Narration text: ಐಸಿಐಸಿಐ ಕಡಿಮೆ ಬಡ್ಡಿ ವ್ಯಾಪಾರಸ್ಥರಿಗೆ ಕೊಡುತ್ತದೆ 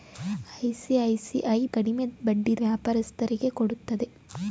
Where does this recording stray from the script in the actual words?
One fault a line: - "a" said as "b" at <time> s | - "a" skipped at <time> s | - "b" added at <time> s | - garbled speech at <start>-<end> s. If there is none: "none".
none